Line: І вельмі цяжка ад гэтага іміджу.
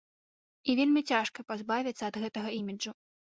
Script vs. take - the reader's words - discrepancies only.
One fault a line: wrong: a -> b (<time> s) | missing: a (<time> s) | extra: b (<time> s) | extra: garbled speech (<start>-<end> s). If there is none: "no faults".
extra: пазбавіцца (1.5 s)